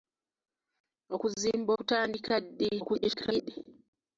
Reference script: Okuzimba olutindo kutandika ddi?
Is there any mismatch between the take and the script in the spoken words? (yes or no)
yes